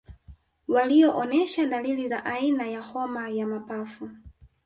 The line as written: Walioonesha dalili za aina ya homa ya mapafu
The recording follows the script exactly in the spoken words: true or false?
true